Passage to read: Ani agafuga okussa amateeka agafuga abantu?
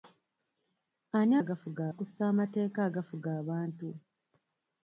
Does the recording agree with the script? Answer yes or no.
yes